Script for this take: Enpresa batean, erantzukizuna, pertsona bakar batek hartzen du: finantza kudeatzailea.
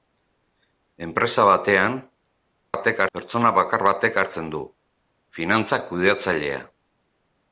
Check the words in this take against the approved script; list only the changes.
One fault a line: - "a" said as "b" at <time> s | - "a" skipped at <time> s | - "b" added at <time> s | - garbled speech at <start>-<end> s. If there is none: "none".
- "erantzukizuna" said as "batek" at 2.7 s